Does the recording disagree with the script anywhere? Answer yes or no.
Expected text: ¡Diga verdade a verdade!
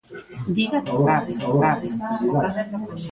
no